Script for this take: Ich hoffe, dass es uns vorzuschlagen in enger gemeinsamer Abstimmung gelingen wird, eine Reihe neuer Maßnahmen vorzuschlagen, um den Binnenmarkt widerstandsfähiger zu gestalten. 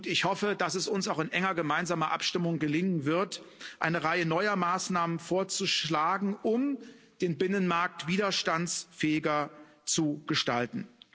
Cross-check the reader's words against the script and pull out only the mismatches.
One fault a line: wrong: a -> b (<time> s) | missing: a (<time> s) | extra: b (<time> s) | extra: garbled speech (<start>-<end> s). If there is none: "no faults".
wrong: vorzuschlagen -> auch (1.1 s)